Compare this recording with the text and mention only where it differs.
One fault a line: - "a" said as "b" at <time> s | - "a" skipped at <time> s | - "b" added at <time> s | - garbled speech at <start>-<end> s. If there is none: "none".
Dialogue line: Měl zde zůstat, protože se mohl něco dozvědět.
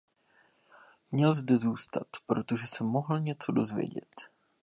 none